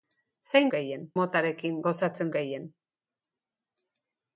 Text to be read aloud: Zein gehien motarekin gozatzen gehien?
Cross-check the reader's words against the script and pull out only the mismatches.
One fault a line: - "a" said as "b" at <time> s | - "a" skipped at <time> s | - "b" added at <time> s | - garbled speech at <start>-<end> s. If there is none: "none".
none